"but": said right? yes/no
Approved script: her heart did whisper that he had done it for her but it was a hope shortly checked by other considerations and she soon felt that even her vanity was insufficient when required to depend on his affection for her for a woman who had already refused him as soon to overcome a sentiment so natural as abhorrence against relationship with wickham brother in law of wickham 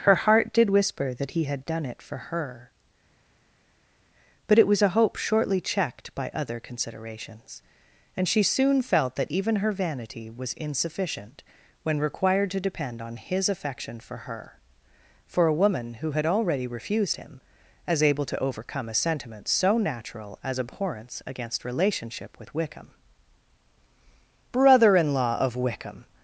yes